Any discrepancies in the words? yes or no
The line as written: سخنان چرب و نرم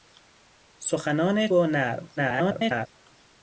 yes